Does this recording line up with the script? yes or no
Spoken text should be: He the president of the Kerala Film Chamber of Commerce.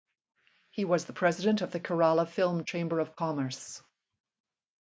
no